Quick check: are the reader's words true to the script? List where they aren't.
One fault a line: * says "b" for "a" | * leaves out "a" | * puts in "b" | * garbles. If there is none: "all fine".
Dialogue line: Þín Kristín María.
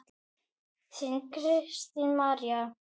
all fine